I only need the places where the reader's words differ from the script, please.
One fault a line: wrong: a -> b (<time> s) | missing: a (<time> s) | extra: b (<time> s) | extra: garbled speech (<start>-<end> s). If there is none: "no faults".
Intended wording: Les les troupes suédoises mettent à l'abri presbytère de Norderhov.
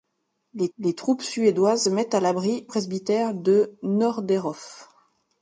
no faults